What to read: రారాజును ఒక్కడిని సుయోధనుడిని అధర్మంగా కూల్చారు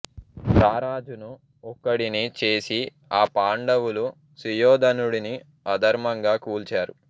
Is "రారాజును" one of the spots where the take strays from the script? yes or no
no